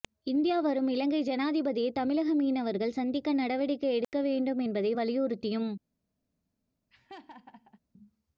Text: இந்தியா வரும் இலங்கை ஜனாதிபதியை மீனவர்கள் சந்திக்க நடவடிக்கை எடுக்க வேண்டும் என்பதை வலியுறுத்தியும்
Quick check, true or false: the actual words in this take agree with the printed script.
false